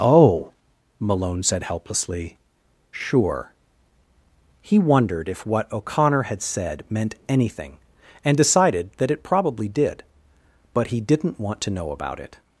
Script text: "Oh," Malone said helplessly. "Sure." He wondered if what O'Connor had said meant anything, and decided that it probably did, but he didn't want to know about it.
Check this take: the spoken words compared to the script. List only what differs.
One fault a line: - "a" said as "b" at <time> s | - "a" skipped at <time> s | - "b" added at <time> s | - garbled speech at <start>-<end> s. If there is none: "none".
none